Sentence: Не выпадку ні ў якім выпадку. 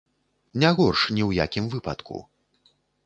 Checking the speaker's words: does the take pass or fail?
fail